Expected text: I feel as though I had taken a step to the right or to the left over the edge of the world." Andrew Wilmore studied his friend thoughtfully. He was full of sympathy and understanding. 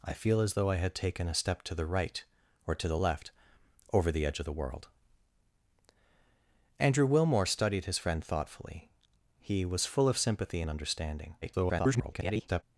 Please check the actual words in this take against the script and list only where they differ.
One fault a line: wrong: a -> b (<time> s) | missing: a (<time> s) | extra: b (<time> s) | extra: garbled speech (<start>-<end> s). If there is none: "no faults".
extra: garbled speech (11.4-12.6 s)